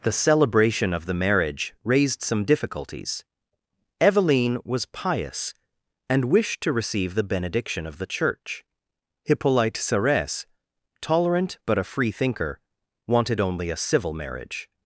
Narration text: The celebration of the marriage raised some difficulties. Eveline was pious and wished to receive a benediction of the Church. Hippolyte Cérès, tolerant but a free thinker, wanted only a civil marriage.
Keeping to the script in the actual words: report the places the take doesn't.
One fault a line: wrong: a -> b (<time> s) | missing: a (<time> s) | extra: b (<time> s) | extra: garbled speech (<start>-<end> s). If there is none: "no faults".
wrong: a -> the (7.1 s)